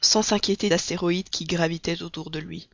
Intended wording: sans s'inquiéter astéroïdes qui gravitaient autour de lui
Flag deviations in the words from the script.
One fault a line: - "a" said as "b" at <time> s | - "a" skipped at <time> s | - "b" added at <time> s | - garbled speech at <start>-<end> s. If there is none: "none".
none